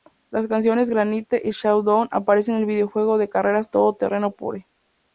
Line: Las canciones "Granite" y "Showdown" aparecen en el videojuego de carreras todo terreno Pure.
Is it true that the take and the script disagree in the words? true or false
false